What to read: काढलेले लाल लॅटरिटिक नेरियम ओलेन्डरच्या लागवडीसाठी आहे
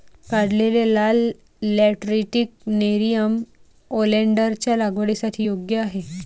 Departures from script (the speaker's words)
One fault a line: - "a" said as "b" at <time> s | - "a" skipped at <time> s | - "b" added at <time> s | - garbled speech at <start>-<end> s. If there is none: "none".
- "योग्य" added at 5.4 s